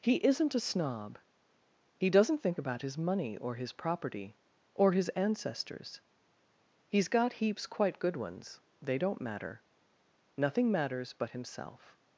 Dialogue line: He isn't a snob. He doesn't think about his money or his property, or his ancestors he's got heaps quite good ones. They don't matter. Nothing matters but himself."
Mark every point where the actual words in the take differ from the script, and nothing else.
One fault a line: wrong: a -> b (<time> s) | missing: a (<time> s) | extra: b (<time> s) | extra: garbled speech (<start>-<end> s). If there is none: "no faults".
no faults